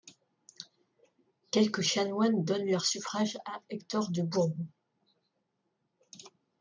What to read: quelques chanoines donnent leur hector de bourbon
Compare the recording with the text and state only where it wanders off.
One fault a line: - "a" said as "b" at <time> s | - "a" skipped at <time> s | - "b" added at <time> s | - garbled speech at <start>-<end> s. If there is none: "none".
- "suffrage à" added at 2.8 s